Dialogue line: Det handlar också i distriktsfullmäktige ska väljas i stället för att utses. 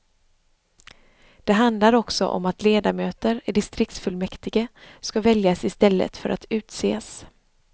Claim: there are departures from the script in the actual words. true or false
true